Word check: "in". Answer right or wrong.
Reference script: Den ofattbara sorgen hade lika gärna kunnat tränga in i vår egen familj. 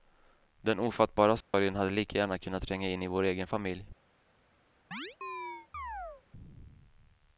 right